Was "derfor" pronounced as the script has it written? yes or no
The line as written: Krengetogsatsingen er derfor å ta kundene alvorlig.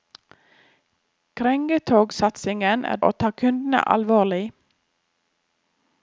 no